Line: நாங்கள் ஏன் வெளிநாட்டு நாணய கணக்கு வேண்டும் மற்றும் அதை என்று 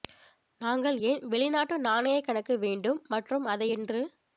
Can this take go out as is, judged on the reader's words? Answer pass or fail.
pass